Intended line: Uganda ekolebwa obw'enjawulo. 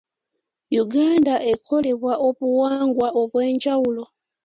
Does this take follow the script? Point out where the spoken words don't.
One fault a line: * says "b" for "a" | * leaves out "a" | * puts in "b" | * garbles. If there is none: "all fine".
* puts in "obuwangwa"